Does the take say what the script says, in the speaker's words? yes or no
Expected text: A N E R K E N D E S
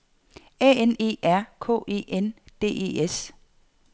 yes